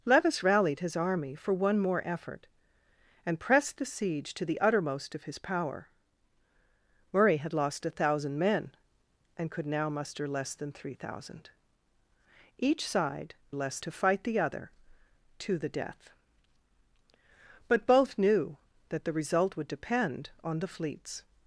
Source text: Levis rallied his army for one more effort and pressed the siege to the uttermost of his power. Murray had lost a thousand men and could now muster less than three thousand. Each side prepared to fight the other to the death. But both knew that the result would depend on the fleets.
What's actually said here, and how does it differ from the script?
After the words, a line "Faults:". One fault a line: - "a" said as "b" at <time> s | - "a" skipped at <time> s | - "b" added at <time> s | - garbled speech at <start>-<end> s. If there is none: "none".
Levis rallied his army for one more effort and pressed the siege to the uttermost of his power. Murray had lost a thousand men and could now muster less than three thousand. Each side less to fight the other to the death. But both knew that the result would depend on the fleets.
Faults:
- "prepared" said as "less" at 13.5 s